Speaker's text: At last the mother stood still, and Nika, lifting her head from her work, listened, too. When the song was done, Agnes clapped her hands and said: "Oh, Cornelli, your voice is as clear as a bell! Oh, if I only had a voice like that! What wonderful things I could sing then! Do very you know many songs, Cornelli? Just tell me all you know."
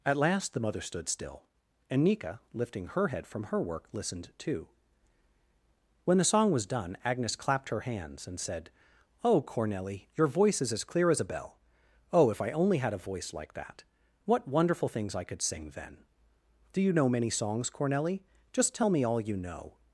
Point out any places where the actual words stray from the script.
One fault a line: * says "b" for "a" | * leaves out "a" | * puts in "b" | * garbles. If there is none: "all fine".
* leaves out "very"